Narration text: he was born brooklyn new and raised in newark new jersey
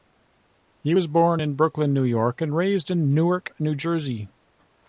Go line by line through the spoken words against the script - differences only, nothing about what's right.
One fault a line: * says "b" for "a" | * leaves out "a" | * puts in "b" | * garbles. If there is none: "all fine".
* puts in "in"
* puts in "york"